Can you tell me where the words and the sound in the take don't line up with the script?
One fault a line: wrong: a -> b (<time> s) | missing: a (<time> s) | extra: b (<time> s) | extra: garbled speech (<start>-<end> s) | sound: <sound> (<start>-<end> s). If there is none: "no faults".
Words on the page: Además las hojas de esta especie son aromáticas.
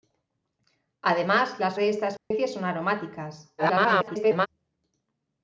missing: hojas (1.8 s)
sound: dropout (2.2-2.3 s)
extra: garbled speech (3.6-4.5 s)